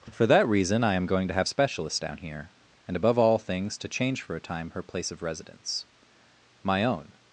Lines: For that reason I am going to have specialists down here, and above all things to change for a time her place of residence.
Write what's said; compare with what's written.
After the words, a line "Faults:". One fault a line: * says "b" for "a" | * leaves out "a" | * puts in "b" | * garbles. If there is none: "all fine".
For that reason I am going to have specialists down here, and above all things to change for a time her place of residence. My own
Faults:
* puts in "My own"